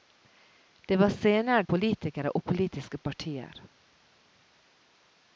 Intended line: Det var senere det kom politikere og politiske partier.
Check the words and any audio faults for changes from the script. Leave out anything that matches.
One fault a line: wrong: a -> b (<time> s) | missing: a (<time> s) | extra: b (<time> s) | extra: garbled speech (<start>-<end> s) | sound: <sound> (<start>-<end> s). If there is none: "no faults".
missing: det kom (1.6 s)